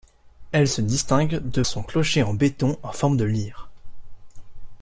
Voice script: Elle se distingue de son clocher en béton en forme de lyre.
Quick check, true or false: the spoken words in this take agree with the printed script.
true